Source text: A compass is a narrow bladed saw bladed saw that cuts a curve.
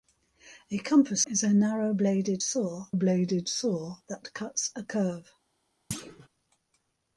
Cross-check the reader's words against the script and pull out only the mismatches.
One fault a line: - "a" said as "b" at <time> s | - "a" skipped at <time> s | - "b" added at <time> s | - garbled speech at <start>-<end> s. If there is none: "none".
none